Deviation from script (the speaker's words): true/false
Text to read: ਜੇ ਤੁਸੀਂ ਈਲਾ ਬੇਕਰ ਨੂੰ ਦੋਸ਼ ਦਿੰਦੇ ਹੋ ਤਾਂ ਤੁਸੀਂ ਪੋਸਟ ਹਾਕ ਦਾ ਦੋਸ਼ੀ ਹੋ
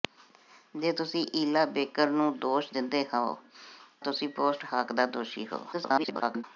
true